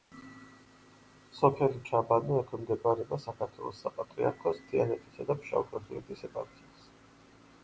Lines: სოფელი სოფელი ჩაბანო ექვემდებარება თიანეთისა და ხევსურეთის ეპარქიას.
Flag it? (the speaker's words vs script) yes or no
yes